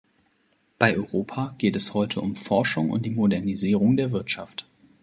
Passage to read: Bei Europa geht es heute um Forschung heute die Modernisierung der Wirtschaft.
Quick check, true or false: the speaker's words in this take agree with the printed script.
false